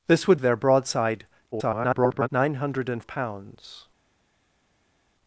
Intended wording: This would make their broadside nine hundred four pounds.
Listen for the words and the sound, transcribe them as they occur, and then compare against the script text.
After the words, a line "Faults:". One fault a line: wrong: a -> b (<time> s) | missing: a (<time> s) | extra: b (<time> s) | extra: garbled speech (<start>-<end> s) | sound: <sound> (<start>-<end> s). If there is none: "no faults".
This would their broadside [garbled] nine hundred pounds.
Faults:
missing: make (0.4 s)
extra: garbled speech (1.5-2.3 s)
missing: four (3.0 s)